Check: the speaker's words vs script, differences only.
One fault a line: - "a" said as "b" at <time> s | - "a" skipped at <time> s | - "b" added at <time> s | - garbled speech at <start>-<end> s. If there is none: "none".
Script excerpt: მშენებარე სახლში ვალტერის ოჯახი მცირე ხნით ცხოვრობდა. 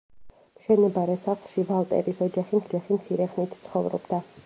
- "ოჯახი" added at 2.7 s